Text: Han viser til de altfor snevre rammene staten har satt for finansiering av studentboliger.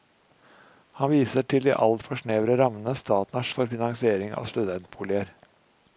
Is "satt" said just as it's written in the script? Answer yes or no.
no